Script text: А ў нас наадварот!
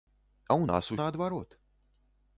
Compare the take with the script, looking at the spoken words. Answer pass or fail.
pass